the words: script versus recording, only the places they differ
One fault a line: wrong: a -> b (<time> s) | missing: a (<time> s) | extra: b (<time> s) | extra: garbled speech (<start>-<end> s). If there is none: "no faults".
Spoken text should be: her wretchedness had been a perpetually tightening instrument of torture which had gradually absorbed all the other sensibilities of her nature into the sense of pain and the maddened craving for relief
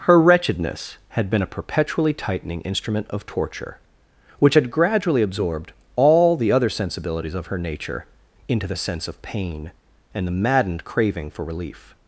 no faults